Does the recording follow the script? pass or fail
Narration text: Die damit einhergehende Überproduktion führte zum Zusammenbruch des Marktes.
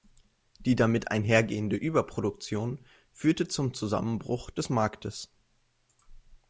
pass